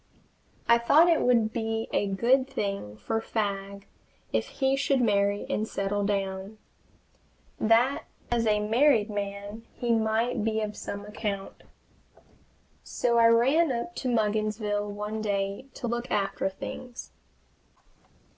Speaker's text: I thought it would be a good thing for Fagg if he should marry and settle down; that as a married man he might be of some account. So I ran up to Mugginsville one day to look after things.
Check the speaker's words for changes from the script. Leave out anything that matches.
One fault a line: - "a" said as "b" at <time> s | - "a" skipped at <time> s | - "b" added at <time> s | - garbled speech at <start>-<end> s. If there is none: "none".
none